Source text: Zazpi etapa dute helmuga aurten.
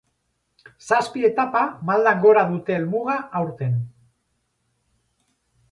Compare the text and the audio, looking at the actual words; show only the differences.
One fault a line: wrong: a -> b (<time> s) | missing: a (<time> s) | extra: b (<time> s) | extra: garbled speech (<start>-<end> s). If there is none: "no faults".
extra: maldan gora (1.9 s)